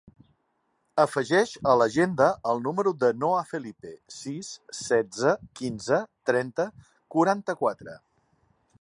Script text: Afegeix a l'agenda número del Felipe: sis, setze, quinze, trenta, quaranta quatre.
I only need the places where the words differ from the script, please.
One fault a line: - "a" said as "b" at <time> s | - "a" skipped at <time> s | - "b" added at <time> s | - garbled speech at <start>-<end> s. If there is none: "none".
- "el" added at 2.5 s
- "Noah" added at 3.2 s